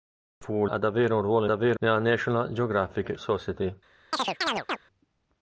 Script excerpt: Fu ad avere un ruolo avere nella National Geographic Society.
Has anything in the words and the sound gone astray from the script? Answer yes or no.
yes